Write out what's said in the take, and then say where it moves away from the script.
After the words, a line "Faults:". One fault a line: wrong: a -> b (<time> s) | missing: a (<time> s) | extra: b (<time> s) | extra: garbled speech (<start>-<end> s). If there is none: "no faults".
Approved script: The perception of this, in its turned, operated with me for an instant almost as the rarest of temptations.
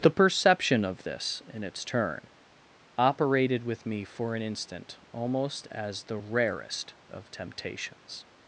The perception of this, in its turn, operated with me for an instant almost as the rarest of temptations.
Faults:
wrong: turned -> turn (1.9 s)